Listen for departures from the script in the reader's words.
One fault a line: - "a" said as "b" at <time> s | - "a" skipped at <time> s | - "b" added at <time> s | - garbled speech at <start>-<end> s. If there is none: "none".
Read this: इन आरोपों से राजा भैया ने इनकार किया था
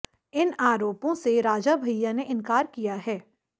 - "था" said as "है" at 3.1 s